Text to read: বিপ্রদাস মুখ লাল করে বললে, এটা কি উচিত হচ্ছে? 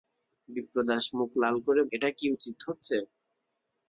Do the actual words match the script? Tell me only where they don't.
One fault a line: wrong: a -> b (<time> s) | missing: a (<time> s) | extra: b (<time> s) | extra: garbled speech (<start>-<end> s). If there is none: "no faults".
missing: বললে (1.8 s)